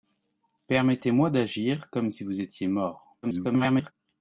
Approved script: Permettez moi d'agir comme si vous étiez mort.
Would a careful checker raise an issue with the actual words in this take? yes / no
yes